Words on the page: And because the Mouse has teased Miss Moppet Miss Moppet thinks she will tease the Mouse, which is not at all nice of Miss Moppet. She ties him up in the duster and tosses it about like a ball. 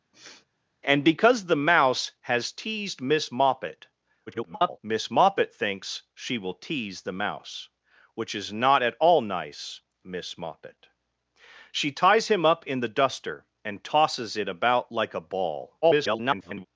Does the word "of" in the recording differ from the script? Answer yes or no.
yes